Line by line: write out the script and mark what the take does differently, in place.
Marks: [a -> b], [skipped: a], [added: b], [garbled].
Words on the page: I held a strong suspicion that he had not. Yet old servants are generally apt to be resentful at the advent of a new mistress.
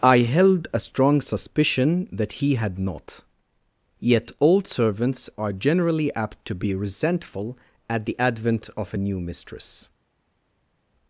I held a strong suspicion that he had not. Yet old servants are generally apt to be resentful at the advent of a new mistress.